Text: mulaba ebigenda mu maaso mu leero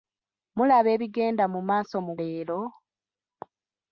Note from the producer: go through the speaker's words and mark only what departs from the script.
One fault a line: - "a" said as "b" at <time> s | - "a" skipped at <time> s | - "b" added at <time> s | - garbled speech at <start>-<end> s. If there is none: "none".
none